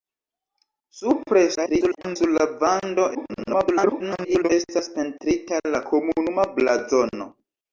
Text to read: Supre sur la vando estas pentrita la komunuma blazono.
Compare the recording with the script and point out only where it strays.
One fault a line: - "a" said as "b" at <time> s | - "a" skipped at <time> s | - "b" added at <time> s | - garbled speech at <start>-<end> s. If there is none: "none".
- garbled speech at 1.5-2.2 s
- garbled speech at 3.1-4.5 s